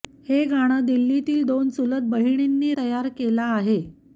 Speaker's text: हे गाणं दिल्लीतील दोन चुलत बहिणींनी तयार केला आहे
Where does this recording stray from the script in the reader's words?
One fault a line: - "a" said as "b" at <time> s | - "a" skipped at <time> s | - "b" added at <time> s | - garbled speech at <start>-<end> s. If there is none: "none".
none